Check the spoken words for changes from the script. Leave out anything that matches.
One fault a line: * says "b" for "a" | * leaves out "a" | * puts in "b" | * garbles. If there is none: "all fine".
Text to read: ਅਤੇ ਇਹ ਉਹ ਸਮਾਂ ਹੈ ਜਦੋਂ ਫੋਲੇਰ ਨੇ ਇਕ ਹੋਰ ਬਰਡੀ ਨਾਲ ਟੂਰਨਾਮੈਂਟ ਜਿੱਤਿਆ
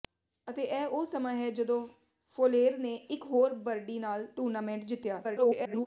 * garbles